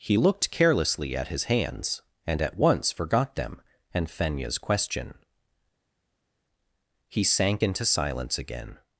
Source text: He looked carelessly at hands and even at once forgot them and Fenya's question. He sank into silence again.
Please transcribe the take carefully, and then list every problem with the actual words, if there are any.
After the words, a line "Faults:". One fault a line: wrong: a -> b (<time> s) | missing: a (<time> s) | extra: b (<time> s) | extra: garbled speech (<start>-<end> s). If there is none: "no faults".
He looked carelessly at his hands and at once forgot them and Fenya's question. He sank into silence again.
Faults:
extra: his (1.3 s)
missing: even (2.4 s)